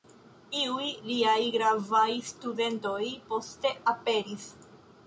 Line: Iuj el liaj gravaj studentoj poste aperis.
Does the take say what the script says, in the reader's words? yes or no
no